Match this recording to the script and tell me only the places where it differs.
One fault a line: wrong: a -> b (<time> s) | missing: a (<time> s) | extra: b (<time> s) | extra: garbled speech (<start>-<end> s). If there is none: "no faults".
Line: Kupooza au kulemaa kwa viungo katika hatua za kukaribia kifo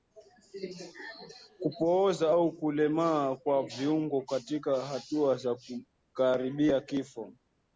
no faults